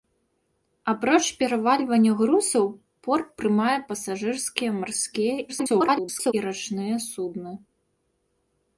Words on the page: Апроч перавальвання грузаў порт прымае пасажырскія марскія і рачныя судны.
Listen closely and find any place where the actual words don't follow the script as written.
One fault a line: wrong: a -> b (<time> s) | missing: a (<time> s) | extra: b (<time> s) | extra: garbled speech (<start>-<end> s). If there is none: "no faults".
extra: garbled speech (5.5-6.3 s)